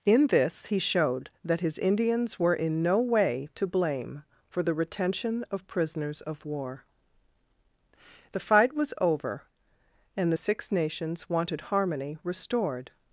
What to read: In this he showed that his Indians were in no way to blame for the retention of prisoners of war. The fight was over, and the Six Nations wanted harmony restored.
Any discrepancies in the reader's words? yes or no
no